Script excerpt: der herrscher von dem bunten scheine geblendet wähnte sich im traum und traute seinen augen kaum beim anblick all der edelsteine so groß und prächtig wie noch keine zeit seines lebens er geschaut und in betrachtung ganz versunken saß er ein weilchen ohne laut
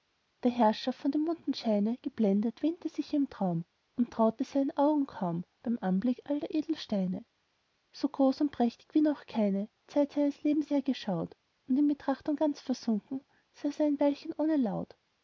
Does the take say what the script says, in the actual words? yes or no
yes